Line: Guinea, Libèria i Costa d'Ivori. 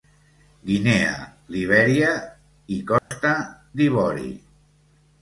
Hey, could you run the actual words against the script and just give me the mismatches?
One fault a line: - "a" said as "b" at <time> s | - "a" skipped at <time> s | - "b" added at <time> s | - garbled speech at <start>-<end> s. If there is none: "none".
none